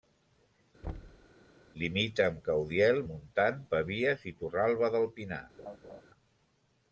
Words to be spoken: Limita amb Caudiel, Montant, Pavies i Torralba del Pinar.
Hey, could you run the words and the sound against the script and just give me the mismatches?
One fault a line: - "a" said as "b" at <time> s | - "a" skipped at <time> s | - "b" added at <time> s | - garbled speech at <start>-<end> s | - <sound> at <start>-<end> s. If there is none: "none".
- thud at 0.8-1.3 s
- laugh at 5.6-6.0 s